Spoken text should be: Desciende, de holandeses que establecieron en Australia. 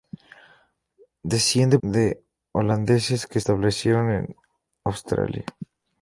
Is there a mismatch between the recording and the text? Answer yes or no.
no